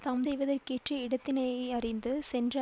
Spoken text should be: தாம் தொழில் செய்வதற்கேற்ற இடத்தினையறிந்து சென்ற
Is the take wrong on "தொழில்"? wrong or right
wrong